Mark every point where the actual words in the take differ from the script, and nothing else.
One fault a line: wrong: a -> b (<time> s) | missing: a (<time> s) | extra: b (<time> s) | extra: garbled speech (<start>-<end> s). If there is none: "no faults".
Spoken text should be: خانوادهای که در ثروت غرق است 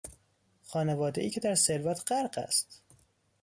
no faults